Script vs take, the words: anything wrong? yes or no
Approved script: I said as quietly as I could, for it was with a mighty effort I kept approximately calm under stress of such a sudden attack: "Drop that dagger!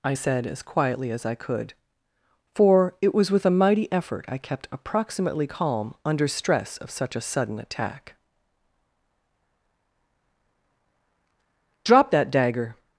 no